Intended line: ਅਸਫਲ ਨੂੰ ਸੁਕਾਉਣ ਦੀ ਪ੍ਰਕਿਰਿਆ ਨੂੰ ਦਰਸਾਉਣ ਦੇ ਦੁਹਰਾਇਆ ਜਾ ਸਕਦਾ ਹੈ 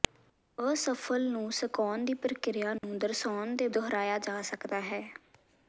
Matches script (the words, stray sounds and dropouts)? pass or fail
fail